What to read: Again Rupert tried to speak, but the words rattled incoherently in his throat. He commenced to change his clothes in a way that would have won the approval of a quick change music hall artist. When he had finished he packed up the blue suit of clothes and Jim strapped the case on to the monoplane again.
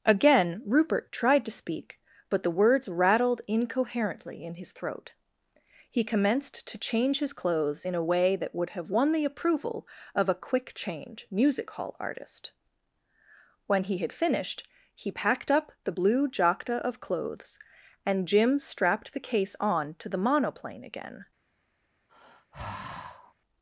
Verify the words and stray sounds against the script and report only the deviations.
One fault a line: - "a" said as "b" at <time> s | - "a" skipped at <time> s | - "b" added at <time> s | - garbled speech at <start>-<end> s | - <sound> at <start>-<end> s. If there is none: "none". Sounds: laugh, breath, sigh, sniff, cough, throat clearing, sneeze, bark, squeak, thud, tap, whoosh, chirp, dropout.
- "suit" said as "jacta" at 16.3 s
- sigh at 22.1-23.3 s